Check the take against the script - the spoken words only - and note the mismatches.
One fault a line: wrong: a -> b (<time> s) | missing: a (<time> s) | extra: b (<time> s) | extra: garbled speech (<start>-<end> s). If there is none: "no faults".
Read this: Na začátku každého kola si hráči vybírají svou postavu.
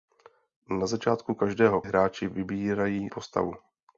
missing: kola si (1.8 s)
missing: svou (3.1 s)